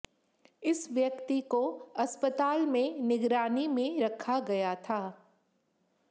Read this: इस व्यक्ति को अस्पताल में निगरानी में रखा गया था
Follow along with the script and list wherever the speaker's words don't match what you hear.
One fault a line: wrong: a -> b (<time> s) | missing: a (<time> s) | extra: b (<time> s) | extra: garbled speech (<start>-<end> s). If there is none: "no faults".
no faults